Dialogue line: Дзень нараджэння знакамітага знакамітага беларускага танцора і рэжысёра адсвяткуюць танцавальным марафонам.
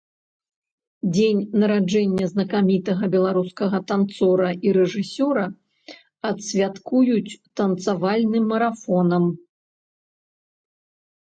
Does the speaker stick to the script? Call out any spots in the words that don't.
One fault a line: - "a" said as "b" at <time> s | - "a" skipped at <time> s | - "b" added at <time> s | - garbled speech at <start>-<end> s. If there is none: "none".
- "знакамітага" skipped at 3.1 s